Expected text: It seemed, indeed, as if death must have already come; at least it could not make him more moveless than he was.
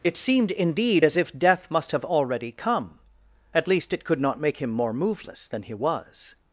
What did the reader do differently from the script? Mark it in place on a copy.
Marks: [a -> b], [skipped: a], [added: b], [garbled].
It seemed, indeed, as if death must have already come; at least it could not make him more moveless than he was.